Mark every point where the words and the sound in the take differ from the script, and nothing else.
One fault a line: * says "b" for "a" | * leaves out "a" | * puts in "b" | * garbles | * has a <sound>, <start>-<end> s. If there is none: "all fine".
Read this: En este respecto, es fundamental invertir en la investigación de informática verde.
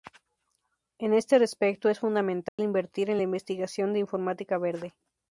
* has a dropout, 2.5-2.6 s